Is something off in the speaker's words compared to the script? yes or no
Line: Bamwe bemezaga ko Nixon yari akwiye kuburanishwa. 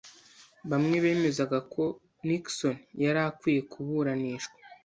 no